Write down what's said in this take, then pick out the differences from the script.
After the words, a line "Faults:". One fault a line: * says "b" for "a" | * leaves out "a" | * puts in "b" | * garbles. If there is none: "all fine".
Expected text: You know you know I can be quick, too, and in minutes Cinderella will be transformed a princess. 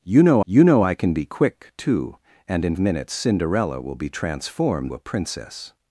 You know you know I can be quick, too, and in minutes Cinderella will be transformed a princess.
Faults:
all fine